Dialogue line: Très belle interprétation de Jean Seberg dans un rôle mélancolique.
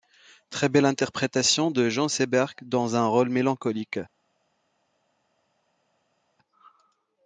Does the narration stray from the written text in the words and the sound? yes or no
no